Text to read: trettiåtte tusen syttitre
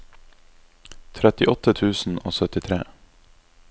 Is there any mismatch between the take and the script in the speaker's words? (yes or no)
yes